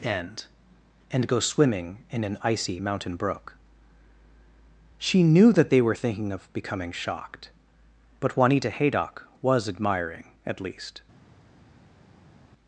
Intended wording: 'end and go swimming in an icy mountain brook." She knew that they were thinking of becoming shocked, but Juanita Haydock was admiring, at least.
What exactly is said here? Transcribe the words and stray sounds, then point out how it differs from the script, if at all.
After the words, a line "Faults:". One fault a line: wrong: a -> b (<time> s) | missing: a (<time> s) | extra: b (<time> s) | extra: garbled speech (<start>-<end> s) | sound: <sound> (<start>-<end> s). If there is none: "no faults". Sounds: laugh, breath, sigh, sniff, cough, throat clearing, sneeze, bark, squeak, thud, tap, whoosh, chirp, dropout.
'end and go swimming in an icy mountain brook." She knew that they were thinking of becoming shocked, but Juanita Haydock was admiring, at least.
Faults:
no faults